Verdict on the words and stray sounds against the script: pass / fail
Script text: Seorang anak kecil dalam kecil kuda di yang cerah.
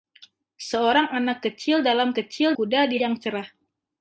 pass